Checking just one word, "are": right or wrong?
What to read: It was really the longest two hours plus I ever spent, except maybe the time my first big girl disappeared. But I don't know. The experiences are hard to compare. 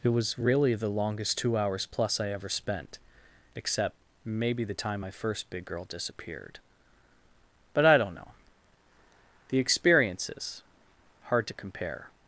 wrong